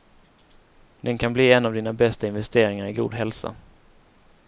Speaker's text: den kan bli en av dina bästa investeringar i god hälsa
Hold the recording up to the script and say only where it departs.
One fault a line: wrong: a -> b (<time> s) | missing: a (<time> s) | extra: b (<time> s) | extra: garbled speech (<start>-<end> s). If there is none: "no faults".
no faults